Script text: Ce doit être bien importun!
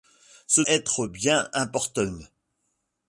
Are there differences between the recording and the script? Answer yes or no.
yes